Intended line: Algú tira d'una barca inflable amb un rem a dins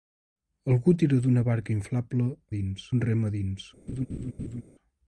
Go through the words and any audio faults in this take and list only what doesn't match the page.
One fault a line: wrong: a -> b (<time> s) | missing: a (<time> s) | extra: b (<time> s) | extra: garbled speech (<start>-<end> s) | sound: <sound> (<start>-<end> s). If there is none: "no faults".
wrong: amb -> dins (2.6 s)
sound: laugh (3.9-4.6 s)